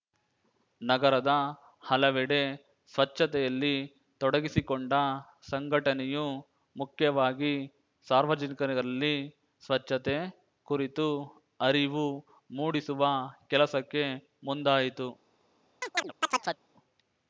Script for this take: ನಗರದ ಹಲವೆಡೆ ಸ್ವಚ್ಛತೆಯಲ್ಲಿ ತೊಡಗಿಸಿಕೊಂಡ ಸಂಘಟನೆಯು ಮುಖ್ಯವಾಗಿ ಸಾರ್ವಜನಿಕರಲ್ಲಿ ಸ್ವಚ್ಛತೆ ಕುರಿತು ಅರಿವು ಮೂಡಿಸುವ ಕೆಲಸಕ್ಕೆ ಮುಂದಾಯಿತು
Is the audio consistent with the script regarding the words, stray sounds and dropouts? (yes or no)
no